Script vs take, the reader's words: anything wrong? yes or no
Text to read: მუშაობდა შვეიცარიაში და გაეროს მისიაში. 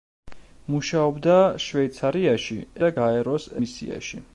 no